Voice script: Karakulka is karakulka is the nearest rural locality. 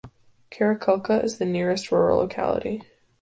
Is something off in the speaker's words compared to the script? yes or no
yes